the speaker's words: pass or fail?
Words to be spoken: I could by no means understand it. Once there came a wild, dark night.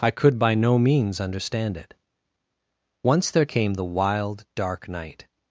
fail